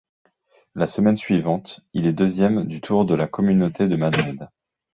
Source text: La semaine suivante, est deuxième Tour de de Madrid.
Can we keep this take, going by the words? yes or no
no